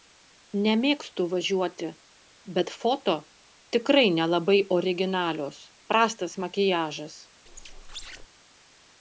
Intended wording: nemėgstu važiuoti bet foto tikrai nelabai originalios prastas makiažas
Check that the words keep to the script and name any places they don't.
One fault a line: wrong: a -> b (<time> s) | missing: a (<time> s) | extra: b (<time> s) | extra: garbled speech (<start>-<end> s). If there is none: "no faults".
no faults